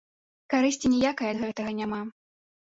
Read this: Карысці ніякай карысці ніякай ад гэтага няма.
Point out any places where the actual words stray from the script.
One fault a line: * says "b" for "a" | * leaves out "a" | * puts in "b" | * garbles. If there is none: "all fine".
* leaves out "карысці ніякай"